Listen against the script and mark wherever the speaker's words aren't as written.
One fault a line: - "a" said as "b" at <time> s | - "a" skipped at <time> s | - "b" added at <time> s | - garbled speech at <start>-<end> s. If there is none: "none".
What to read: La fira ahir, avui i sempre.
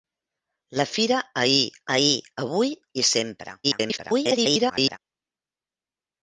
- "ahir" added at 2.0 s
- garbled speech at 3.6-5.0 s